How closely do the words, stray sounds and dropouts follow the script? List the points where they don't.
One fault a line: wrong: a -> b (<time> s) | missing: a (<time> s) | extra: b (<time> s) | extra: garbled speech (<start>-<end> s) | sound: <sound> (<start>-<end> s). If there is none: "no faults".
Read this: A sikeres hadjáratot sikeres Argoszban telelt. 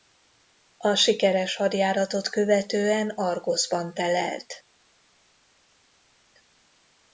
wrong: sikeres -> követően (2.3 s)